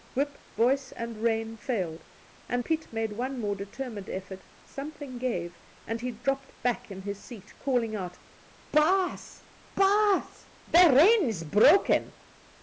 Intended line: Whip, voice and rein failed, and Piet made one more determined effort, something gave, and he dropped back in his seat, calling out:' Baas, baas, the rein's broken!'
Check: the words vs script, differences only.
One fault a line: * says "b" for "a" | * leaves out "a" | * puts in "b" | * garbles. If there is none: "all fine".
all fine